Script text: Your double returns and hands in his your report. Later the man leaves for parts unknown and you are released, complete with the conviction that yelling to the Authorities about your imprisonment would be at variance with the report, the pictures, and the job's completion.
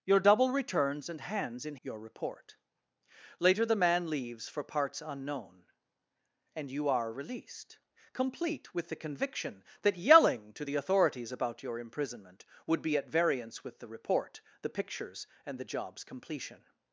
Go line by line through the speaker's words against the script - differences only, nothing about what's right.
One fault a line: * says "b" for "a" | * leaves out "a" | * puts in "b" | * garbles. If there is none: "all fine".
* leaves out "his"